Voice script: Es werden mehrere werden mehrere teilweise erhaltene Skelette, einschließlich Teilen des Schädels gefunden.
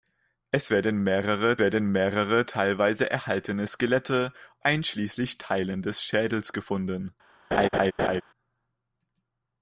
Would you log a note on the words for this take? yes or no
no